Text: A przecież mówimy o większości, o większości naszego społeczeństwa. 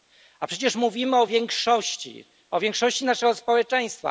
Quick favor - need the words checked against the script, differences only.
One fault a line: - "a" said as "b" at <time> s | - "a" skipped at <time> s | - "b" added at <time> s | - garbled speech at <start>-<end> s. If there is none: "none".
none